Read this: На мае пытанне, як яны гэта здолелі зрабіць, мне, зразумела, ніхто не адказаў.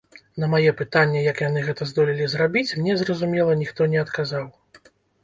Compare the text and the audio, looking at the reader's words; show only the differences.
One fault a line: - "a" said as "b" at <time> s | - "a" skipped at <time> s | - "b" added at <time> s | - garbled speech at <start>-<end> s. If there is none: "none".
none